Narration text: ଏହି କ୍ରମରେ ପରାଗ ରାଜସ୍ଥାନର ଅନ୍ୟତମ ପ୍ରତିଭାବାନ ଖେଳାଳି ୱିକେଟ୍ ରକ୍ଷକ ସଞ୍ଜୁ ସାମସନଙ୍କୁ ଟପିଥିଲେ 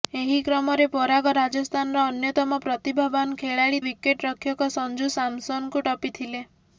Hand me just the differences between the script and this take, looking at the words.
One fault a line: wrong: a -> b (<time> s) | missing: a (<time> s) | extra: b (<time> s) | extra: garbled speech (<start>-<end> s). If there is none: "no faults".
no faults